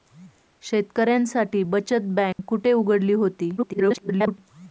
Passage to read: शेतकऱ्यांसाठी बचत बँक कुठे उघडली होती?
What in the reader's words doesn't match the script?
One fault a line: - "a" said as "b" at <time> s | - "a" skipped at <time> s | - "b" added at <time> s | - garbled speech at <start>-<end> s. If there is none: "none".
- garbled speech at 3.6-4.4 s